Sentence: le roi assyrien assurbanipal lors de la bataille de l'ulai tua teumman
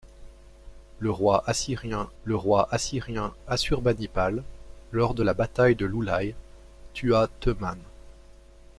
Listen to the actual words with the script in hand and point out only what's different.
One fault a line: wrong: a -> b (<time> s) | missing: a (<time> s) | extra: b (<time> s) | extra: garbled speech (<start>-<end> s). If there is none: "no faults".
extra: le roi assyrien (2.2 s)